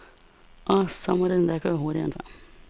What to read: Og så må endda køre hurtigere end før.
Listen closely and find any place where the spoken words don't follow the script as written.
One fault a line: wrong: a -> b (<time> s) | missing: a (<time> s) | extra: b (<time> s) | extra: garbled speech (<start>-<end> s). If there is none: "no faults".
extra: det (1.3 s)